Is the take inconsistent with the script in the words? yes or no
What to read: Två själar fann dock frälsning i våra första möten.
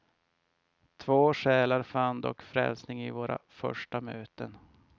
no